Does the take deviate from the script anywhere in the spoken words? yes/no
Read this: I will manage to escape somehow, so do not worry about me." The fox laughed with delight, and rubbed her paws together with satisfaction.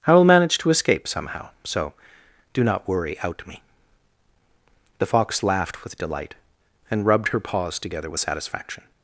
yes